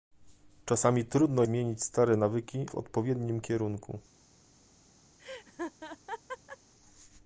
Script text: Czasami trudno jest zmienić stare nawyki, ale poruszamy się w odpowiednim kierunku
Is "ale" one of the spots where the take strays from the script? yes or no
yes